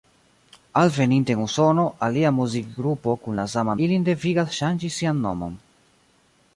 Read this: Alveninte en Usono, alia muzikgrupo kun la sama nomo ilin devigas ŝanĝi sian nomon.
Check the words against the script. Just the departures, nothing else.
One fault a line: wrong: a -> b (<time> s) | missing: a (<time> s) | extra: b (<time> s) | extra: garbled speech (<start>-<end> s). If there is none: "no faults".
missing: nomo (3.8 s)